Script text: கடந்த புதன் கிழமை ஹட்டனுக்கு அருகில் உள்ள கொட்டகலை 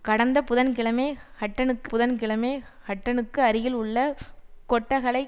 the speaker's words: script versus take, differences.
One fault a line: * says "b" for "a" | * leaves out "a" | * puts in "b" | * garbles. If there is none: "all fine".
* puts in "புதன் கிழமை ஹட்டனுக்கு"